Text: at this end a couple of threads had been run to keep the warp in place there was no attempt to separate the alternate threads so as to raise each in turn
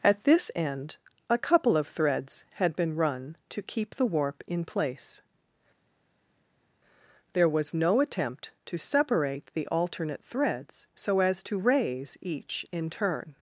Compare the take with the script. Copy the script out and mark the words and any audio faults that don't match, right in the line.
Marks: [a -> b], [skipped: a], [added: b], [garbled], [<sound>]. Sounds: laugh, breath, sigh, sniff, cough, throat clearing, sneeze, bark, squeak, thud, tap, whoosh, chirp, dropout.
at this end a couple of threads had been run to keep the warp in place there was no attempt to separate the alternate threads so as to raise each in turn